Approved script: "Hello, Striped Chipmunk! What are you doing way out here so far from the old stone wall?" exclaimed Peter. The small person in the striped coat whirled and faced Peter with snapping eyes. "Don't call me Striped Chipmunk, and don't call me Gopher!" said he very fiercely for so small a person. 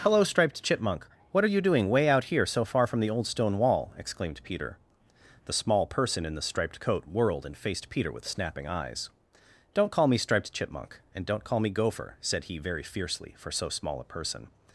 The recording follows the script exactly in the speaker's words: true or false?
true